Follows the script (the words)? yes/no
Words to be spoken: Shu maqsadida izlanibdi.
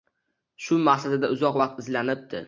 no